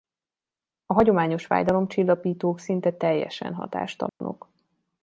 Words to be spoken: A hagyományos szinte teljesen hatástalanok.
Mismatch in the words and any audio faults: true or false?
true